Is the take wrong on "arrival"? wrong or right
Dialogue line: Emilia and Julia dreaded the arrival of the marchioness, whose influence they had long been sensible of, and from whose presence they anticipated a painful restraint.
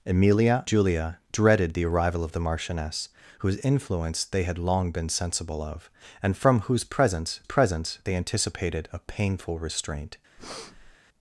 right